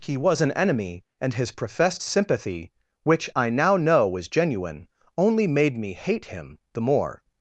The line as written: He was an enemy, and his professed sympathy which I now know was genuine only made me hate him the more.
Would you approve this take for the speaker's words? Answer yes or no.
yes